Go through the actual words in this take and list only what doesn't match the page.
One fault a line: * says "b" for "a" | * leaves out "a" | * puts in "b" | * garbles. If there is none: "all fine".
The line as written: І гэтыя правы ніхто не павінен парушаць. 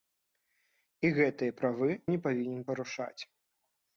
* leaves out "ніхто"